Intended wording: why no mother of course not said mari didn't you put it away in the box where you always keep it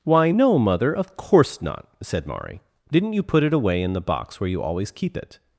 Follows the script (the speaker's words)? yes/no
yes